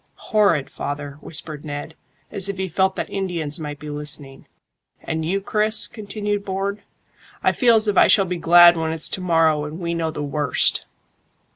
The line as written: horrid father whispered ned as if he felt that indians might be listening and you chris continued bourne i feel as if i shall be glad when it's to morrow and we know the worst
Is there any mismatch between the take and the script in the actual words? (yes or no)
no